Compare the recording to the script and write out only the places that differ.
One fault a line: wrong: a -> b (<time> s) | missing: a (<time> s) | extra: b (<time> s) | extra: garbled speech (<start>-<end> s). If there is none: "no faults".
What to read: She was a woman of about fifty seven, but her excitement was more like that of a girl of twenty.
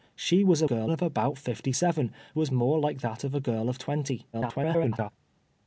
wrong: woman -> girl (0.6 s)
missing: but her excitement (2.1 s)
extra: garbled speech (4.3-5.1 s)